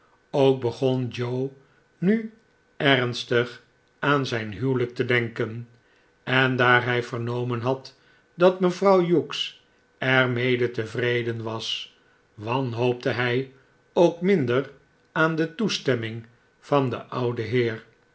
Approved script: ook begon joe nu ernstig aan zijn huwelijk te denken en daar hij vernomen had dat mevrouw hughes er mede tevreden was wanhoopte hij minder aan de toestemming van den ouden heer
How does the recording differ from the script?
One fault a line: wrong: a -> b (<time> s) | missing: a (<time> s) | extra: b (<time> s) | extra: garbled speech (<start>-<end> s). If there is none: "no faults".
extra: ook (13.9 s)